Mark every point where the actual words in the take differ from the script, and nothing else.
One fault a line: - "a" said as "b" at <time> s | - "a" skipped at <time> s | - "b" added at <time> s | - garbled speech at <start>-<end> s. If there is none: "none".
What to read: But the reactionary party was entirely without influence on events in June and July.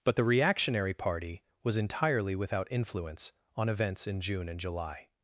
none